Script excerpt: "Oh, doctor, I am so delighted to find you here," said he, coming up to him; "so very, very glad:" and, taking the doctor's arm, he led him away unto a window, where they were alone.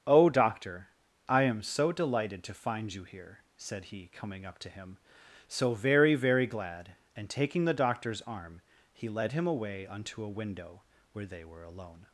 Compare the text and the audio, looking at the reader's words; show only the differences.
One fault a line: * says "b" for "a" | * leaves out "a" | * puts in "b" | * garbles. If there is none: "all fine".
all fine